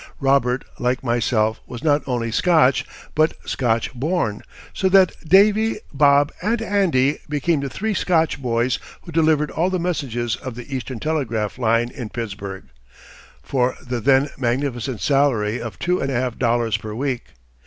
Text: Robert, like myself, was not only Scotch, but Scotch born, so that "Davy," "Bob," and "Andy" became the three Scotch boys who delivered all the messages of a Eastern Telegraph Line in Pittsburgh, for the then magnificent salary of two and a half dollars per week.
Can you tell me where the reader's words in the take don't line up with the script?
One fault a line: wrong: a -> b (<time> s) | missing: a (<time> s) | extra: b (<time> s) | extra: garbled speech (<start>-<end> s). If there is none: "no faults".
wrong: a -> the (10.6 s)